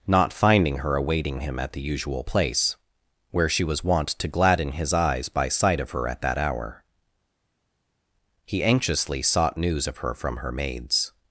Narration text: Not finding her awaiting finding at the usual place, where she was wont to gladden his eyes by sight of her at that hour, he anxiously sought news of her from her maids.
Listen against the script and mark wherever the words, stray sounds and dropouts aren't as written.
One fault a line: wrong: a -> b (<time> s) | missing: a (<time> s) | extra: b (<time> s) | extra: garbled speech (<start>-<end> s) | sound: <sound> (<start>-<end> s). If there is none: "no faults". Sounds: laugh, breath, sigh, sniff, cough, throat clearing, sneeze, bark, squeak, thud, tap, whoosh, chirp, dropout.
wrong: finding -> him (1.4 s)